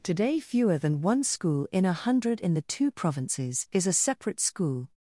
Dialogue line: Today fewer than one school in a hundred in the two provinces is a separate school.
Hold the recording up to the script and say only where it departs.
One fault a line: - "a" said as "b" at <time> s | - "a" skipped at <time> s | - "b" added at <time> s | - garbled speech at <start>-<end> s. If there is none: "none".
none